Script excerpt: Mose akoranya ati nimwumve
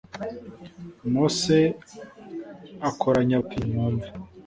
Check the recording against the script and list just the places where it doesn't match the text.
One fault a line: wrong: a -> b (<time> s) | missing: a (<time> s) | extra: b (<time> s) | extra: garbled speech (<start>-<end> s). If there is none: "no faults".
no faults